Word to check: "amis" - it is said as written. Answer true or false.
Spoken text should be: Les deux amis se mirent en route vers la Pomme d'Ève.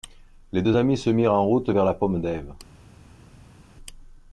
true